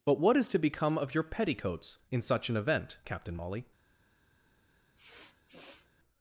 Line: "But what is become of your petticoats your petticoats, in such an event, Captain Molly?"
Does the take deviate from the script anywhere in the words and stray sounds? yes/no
yes